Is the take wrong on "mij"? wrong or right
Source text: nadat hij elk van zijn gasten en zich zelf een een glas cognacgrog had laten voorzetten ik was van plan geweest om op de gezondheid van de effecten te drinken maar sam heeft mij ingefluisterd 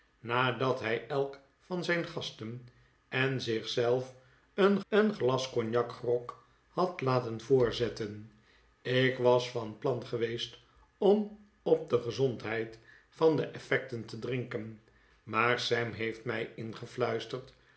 right